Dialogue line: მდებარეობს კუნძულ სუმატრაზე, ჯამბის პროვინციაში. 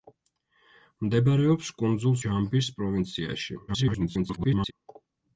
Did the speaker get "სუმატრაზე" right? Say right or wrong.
wrong